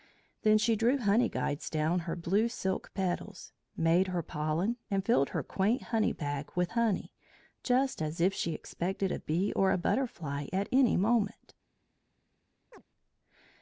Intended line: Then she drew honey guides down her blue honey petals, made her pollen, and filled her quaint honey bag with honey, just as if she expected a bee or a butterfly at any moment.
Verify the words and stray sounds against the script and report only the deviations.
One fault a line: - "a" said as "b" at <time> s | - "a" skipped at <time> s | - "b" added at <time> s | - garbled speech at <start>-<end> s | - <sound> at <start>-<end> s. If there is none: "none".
- "honey" said as "silk" at 2.5 s
- chirp at 12.7-12.8 s